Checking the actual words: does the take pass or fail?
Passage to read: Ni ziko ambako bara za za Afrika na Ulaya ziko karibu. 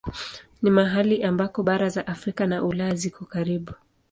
fail